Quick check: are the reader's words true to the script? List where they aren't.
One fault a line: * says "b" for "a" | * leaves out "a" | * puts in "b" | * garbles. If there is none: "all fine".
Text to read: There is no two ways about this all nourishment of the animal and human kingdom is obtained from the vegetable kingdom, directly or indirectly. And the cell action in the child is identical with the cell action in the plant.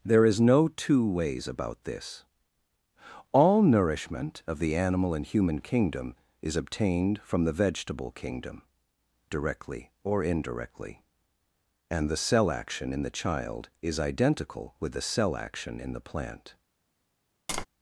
all fine